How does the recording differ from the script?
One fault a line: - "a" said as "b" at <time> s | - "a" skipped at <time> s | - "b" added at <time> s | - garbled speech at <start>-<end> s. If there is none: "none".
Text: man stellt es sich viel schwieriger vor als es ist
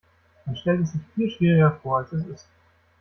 none